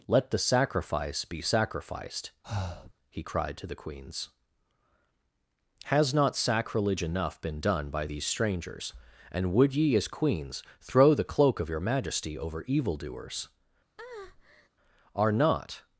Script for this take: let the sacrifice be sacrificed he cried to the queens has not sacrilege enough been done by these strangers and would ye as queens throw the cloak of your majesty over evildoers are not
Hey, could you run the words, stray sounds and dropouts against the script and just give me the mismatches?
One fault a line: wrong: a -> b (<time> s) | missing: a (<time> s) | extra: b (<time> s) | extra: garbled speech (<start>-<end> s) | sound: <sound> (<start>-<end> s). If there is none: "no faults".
sound: breath (2.4-2.9 s)
sound: breath (14.0-14.7 s)